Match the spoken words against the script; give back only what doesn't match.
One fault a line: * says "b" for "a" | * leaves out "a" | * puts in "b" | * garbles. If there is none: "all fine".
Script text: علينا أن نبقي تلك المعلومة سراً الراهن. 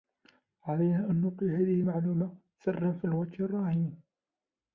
* says "هذه" for "تلك"
* puts in "في الوقت"